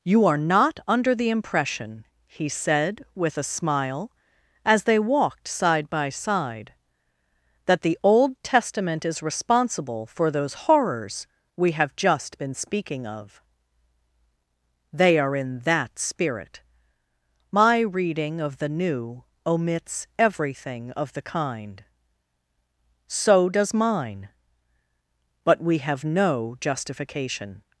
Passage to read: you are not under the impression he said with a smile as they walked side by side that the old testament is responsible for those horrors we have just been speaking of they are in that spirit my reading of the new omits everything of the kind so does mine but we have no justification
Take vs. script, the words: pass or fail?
pass